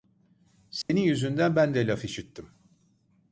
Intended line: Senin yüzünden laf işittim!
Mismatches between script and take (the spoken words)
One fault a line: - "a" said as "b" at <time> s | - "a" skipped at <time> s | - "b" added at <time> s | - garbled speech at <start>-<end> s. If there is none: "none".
- "ben de" added at 1.5 s